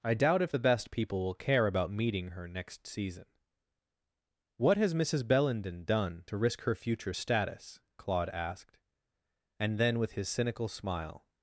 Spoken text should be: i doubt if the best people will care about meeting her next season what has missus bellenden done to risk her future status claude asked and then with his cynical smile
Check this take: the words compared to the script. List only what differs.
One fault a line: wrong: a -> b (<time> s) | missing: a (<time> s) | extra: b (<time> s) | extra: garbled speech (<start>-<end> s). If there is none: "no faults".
no faults